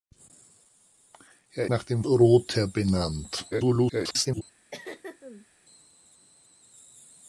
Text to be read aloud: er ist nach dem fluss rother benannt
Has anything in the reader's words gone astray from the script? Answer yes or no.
yes